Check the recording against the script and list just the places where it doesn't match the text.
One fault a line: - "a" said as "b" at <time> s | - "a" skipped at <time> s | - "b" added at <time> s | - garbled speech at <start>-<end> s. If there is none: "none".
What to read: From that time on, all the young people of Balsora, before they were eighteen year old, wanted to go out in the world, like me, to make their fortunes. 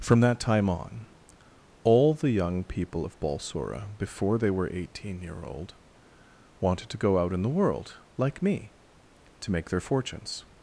none